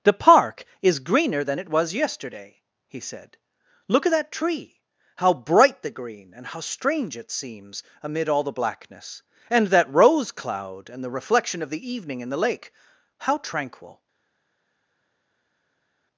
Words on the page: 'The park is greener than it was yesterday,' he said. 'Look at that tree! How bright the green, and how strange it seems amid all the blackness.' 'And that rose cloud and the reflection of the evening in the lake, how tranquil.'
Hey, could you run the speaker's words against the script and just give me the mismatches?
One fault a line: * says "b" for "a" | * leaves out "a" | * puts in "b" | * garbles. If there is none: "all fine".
all fine